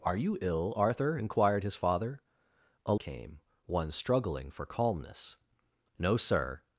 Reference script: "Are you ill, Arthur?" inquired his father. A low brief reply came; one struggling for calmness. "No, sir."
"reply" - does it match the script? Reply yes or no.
no